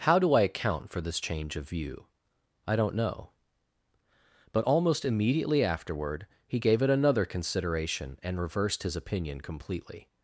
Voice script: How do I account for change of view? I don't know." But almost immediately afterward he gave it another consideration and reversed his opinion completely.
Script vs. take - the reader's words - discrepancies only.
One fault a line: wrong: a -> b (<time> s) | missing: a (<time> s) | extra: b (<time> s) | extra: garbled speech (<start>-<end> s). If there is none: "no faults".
extra: this (1.0 s)